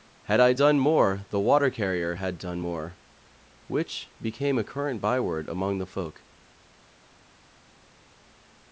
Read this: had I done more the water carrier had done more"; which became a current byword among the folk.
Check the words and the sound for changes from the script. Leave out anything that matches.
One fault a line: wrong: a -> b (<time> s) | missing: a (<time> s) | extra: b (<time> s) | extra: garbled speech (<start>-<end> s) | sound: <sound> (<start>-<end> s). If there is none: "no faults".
no faults